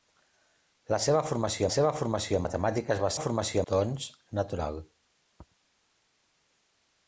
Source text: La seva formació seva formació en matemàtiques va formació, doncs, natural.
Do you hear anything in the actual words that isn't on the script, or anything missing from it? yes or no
no